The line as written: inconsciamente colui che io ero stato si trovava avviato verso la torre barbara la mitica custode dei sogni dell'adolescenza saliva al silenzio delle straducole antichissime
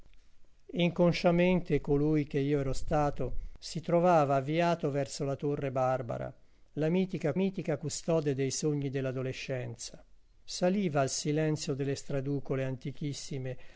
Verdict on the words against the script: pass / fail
fail